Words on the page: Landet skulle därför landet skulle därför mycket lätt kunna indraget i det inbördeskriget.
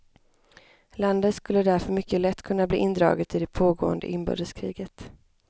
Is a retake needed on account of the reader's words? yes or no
yes